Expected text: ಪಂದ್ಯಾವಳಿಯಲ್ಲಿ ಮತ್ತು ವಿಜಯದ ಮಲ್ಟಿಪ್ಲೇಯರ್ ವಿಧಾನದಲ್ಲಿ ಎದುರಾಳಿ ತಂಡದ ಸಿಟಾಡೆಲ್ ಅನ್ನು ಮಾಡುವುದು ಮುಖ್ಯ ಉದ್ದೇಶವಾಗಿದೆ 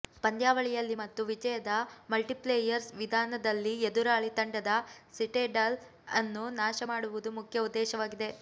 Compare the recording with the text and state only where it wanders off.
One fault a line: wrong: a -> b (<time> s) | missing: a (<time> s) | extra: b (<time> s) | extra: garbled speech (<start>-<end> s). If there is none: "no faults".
extra: ನಾಶ (6.6 s)